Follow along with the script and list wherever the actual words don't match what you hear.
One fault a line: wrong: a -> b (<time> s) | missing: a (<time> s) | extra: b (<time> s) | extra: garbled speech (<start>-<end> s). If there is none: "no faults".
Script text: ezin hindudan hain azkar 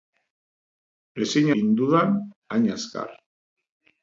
no faults